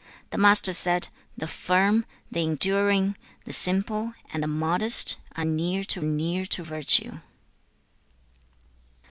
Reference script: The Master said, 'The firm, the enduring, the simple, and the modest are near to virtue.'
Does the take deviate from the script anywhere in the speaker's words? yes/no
yes